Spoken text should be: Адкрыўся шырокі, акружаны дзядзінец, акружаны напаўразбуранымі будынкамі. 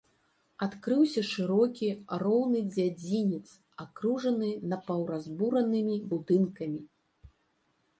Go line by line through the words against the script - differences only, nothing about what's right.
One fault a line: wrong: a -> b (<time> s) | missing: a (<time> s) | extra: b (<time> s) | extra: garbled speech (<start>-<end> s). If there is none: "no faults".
wrong: акружаны -> роўны (2.2 s)